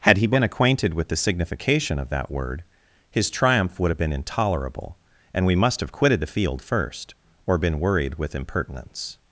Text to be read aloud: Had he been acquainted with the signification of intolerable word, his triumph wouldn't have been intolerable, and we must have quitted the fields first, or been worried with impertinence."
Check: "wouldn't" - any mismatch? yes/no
yes